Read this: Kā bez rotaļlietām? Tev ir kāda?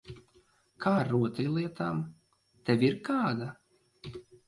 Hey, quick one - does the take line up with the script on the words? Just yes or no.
no